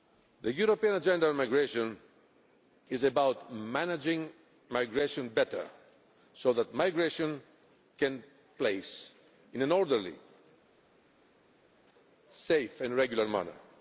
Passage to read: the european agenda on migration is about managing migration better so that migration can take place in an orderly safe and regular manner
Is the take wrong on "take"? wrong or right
wrong